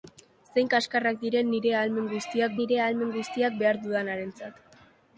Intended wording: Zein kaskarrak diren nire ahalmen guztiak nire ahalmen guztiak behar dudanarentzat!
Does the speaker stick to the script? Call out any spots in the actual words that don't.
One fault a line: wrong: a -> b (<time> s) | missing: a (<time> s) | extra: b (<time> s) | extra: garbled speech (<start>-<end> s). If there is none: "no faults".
no faults